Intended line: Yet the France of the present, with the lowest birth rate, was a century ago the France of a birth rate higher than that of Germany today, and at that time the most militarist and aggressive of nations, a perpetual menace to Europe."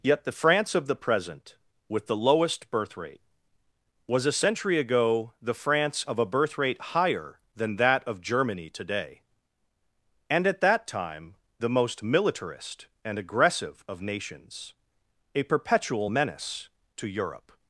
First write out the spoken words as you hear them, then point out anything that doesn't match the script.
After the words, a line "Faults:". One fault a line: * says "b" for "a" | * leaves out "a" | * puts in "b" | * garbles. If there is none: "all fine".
Yet the France of the present, with the lowest birth rate, was a century ago the France of a birth rate higher than that of Germany today, and at that time the most militarist and aggressive of nations, a perpetual menace to Europe."
Faults:
all fine